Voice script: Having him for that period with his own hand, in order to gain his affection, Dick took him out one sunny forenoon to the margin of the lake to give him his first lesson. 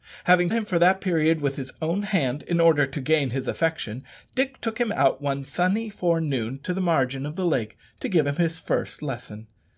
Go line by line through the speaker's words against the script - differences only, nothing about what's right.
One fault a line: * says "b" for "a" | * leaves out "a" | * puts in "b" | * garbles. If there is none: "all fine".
all fine